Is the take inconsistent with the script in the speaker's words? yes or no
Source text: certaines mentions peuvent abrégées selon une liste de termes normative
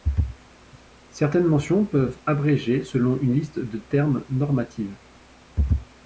no